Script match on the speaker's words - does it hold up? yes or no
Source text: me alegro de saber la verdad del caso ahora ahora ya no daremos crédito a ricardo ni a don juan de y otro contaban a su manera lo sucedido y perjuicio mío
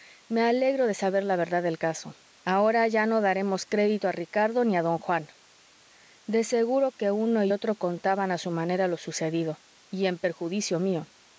no